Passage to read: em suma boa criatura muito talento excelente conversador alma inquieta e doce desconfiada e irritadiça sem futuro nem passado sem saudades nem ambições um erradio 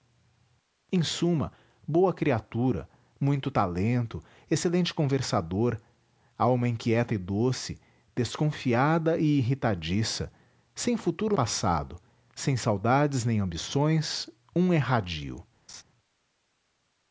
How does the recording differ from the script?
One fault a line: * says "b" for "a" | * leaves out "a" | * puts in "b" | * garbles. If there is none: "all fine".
* leaves out "nem"